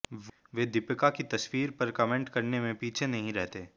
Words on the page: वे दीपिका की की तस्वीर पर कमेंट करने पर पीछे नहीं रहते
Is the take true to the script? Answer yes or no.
no